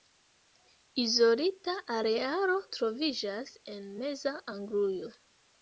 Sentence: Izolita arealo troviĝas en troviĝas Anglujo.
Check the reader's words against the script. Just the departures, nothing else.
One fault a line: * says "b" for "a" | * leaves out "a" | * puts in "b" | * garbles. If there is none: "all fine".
* says "meza" for "troviĝas"